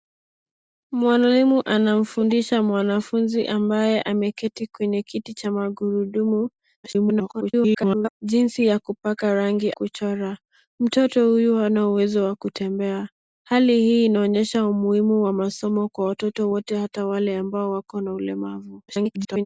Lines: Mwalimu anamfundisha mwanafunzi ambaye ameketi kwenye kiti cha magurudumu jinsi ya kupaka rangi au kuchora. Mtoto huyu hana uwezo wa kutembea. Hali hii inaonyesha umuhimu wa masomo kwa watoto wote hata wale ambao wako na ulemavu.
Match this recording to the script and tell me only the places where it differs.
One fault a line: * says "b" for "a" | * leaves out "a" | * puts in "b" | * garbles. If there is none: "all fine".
* garbles
* leaves out "au"
* garbles